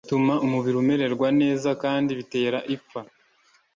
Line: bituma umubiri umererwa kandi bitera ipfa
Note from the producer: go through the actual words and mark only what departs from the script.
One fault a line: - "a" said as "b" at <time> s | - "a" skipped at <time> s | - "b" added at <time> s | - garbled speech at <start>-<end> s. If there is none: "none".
- "neza" added at 1.4 s